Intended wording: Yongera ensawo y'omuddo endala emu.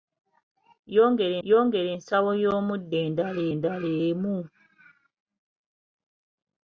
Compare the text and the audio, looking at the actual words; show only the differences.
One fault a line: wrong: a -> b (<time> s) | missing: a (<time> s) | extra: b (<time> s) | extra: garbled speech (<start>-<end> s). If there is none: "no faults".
extra: yongera (1.5 s)
extra: endala (3.5 s)